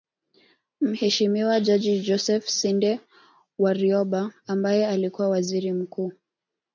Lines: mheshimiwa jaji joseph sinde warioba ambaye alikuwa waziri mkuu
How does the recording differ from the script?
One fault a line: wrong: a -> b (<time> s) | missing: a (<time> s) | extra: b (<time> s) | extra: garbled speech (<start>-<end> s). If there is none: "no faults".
no faults